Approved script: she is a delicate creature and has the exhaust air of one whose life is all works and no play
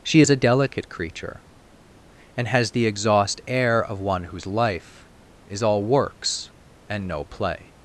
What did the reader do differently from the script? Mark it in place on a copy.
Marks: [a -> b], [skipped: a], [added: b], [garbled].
she is a delicate creature and has the exhaust air of one whose life is all works and no play